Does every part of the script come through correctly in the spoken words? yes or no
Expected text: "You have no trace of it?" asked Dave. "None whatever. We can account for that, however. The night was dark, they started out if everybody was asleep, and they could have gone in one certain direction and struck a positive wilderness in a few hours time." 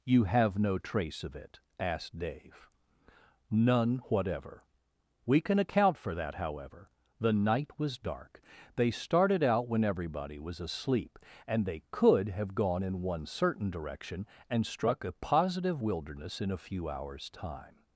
no